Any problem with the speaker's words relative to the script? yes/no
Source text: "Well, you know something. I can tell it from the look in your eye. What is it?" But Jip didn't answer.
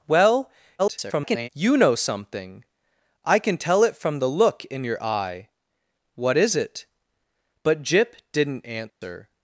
yes